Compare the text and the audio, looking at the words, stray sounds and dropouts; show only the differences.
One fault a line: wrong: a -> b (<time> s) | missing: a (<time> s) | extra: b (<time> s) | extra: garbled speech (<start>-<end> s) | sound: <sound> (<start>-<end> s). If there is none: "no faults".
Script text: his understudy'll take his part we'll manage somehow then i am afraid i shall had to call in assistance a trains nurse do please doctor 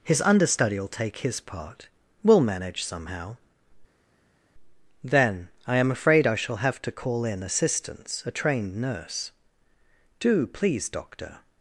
wrong: had -> have (6.6 s)
wrong: trains -> trained (8.3 s)